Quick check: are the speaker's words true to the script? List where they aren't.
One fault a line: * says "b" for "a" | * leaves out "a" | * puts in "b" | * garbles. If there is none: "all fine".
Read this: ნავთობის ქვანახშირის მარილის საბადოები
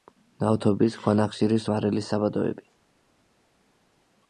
all fine